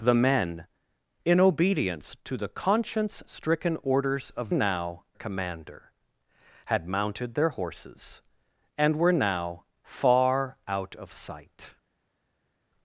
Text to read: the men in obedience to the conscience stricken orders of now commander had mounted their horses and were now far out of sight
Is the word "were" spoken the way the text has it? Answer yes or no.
yes